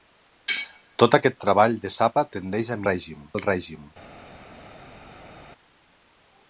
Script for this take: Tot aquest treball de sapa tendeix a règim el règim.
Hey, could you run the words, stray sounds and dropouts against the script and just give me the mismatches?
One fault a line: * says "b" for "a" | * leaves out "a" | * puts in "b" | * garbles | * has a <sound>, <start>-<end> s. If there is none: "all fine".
all fine